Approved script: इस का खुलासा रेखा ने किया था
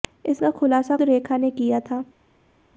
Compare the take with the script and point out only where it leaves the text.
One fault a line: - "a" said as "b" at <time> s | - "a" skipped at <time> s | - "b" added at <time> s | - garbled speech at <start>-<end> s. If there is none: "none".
none